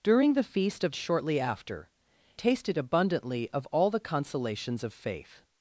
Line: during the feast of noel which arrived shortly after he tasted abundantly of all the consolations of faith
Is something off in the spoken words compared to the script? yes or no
yes